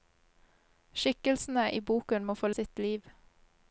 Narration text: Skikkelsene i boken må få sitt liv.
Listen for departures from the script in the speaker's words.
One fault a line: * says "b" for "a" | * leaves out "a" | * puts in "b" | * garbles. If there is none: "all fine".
all fine